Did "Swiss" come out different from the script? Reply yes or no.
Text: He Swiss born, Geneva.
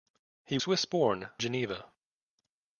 no